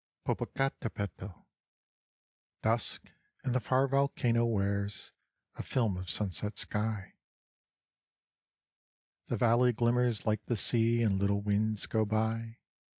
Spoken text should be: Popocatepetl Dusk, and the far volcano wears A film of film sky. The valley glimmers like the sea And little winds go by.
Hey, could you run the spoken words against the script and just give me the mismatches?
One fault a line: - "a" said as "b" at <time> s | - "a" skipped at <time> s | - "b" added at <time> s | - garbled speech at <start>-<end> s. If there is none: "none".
- "film" said as "sunset" at 6.1 s